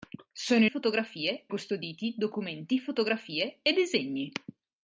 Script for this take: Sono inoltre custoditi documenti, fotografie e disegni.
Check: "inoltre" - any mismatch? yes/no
yes